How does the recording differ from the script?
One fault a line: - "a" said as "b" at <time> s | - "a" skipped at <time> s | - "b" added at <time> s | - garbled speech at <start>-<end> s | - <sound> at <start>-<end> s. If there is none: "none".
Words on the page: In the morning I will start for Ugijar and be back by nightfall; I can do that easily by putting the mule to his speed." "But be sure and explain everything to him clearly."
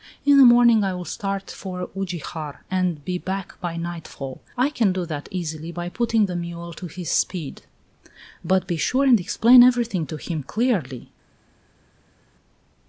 none